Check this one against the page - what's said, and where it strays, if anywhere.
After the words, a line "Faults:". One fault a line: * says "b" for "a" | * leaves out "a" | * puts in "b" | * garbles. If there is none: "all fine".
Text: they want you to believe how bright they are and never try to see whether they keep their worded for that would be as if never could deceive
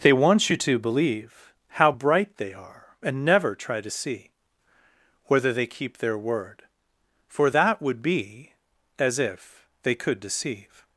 they want you to believe how bright they are and never try to see whether they keep their word for that would be as if they could deceive
Faults:
* says "word" for "worded"
* says "they" for "never"